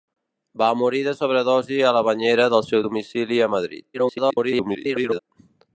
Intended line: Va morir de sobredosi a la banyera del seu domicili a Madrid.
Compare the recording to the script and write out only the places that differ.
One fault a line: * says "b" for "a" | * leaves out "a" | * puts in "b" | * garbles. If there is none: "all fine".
* garbles